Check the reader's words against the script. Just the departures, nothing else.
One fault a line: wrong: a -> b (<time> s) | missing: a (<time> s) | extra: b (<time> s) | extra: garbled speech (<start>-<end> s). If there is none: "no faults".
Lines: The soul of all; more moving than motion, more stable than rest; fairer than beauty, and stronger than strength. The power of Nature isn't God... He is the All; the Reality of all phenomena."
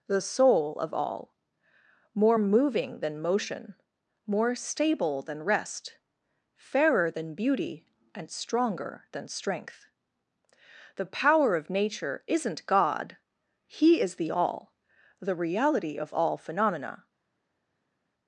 no faults